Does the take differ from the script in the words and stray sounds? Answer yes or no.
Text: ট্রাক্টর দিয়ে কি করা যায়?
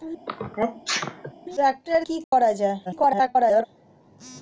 yes